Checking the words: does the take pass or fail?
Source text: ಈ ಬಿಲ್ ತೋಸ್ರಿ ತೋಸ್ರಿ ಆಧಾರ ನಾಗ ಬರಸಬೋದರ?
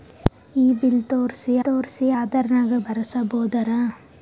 pass